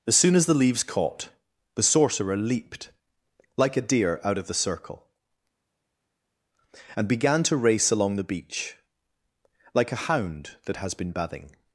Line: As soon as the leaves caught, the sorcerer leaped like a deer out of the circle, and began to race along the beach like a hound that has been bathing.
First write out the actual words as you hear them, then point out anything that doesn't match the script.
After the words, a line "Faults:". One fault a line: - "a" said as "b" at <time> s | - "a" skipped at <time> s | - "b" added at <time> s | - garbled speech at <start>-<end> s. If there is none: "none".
As soon as the leaves caught, the sorcerer leaped like a deer out of the circle, and began to race along the beach like a hound that has been bathing.
Faults:
none